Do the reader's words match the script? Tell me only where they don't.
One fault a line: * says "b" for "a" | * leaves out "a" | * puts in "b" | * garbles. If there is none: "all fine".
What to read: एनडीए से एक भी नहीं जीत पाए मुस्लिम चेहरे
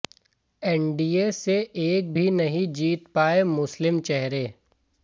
all fine